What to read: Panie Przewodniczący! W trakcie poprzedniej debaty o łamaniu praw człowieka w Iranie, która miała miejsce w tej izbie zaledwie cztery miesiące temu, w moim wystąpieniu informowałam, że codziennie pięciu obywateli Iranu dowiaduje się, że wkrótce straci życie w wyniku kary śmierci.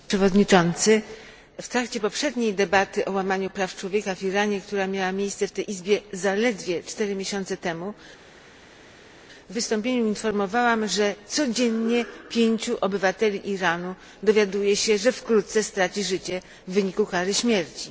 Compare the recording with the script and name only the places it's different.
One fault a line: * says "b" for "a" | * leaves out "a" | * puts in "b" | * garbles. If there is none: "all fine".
* leaves out "moim"